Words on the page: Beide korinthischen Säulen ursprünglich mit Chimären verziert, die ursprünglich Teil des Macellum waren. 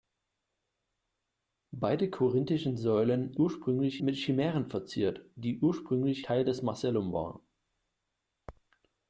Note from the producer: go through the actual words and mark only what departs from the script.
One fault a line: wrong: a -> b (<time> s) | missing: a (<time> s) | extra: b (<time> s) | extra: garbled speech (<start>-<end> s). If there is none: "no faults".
no faults